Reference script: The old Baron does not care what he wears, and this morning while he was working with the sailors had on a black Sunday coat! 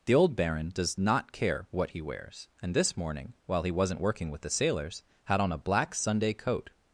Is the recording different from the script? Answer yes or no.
yes